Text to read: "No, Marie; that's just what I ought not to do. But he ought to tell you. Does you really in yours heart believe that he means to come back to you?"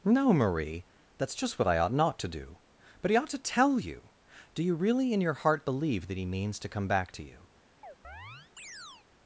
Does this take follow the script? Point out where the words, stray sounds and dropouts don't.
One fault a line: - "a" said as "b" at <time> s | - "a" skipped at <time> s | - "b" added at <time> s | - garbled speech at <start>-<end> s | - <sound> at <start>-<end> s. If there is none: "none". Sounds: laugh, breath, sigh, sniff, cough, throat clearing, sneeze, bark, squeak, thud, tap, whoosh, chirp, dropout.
- "Does" said as "Do" at 4.5 s
- "yours" said as "your" at 5.2 s
- chirp at 7.8-9.1 s